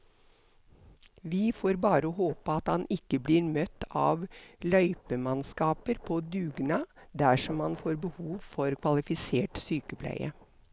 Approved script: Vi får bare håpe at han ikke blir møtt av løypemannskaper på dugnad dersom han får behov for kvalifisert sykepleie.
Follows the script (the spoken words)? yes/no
yes